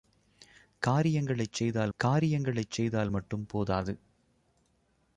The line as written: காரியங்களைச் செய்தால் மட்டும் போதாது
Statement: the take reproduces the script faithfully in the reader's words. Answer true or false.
false